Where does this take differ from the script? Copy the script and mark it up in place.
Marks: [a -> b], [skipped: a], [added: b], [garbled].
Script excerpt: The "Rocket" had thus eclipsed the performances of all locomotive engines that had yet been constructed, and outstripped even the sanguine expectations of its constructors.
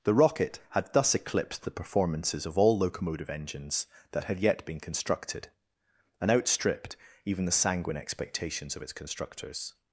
The "Rocket" had thus eclipsed the performances of all locomotive engines that had yet been constructed, and outstripped even the sanguine expectations of its constructors.